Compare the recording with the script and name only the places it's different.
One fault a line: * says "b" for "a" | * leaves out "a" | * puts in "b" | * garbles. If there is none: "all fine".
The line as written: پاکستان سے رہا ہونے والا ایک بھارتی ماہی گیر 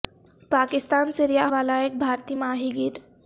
* leaves out "ہونے"